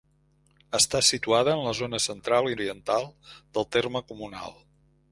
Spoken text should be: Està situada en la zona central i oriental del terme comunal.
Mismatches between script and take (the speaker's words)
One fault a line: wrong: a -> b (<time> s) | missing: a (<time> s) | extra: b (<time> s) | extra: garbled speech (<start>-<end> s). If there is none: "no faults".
no faults